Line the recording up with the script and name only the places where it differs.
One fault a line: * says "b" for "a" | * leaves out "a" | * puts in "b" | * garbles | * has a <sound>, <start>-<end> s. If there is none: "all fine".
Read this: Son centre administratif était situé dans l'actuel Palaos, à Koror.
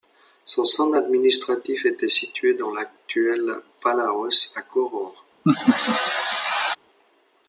* has a laugh, 5.4-6.8 s